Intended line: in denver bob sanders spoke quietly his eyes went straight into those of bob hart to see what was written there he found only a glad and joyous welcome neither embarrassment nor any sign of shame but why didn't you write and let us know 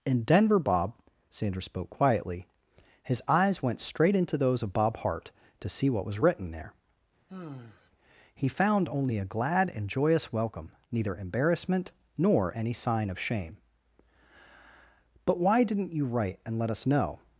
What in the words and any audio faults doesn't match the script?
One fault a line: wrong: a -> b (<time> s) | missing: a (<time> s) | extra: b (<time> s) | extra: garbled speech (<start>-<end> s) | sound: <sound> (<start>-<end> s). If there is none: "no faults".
sound: sigh (7.3-7.9 s)